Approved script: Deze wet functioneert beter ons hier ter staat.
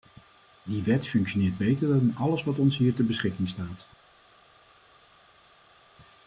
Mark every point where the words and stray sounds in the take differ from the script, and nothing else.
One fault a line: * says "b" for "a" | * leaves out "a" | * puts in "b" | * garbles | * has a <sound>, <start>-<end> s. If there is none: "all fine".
* says "Die" for "Deze"
* puts in "dan alles wat"
* puts in "beschikking"